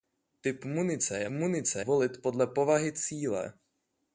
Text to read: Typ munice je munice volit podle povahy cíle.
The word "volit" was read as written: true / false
true